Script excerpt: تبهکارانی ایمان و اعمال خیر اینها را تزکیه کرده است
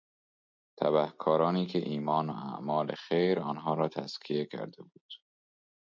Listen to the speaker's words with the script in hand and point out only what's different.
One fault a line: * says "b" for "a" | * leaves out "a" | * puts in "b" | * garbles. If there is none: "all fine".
* puts in "که"
* says "آنها" for "اینها"
* says "بود" for "است"